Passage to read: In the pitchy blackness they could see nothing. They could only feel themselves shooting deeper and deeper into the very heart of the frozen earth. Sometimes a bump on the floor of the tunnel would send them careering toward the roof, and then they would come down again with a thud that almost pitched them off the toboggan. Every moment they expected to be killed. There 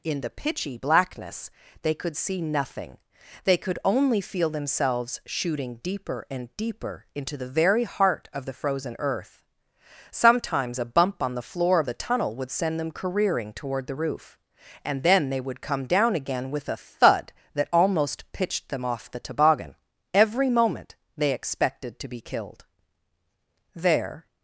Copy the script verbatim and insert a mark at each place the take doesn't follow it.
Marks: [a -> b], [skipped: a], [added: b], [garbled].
In the pitchy blackness they could see nothing. They could only feel themselves shooting deeper and deeper into the very heart of the frozen earth. Sometimes a bump on the floor of the tunnel would send them careering toward the roof, and then they would come down again with a thud that almost pitched them off the toboggan. Every moment they expected to be killed. There